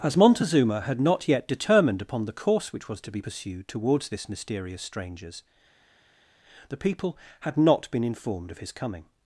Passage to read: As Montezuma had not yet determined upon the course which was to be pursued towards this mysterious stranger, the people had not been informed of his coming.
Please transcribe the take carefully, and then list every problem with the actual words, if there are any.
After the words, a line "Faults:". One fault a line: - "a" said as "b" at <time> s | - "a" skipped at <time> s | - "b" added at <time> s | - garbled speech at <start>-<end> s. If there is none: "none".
As Montezuma had not yet determined upon the course which was to be pursued towards this mysterious strangers, the people had not been informed of his coming.
Faults:
- "stranger" said as "strangers" at 4.8 s